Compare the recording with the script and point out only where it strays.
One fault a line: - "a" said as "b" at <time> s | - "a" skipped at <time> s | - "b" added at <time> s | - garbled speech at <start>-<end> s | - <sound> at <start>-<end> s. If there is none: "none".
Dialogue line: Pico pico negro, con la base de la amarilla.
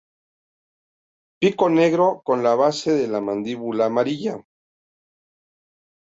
- "pico" skipped at 1.7 s
- "mandíbula" added at 3.2 s